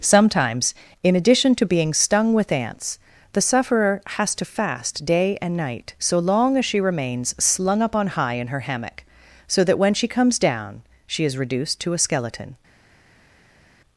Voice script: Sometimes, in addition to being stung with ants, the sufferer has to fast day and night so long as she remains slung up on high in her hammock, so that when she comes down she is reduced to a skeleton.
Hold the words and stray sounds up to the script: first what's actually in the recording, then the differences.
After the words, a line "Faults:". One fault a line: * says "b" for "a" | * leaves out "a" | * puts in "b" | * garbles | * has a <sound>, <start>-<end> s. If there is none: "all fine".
Sometimes, in addition to being stung with ants, the sufferer has to fast day and night so long as she remains slung up on high in her hammock, so that when she comes down she is reduced to a skeleton.
Faults:
all fine